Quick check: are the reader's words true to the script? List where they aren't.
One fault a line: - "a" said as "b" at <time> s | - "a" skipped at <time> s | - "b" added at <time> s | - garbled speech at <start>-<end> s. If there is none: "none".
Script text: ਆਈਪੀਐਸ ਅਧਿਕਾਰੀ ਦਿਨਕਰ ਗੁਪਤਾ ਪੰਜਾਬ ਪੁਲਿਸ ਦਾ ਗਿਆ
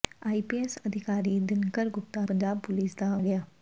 none